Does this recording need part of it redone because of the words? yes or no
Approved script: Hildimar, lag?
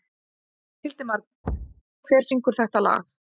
yes